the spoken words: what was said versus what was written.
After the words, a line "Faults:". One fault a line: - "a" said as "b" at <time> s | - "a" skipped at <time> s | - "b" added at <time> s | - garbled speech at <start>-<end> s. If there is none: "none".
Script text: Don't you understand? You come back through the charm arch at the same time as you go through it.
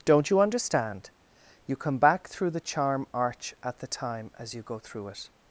Don't you understand? You come back through the charm arch at the time as you go through it.
Faults:
- "same" skipped at 3.9 s